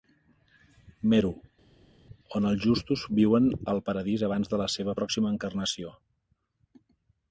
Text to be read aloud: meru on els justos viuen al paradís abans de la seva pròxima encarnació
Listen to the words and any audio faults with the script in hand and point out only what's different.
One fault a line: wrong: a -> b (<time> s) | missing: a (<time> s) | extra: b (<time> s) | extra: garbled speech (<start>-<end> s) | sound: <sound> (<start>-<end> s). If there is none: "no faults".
no faults